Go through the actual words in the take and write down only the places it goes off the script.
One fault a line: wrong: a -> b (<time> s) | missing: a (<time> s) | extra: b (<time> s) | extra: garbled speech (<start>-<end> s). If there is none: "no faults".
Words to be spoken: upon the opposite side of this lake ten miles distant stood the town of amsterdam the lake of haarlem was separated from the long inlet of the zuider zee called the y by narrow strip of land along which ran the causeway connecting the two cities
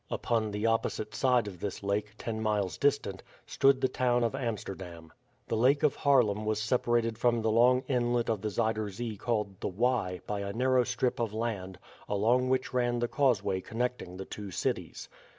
extra: a (10.4 s)